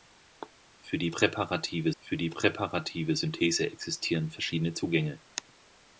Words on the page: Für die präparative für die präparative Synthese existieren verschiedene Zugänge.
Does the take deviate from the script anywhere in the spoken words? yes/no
no